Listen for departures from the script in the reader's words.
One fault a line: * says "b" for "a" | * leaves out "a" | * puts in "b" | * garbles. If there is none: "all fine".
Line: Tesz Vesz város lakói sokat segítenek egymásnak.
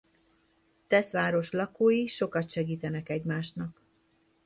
* leaves out "Vesz"